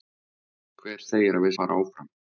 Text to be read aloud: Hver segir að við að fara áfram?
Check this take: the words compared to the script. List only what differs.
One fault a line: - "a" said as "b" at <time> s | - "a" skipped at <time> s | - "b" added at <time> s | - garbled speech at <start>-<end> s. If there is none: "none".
none